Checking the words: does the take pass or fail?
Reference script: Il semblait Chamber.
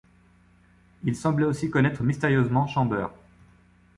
fail